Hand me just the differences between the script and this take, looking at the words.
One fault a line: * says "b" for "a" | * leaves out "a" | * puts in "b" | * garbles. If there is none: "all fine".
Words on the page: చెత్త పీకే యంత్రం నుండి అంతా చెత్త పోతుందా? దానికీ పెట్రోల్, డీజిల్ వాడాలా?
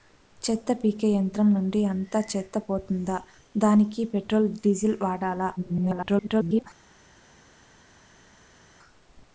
* garbles